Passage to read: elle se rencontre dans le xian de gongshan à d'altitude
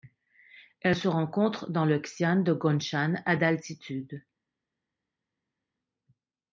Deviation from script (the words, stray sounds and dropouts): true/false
false